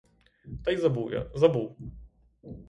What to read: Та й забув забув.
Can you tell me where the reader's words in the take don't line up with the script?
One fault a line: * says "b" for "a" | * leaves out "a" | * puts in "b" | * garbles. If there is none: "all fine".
* puts in "я"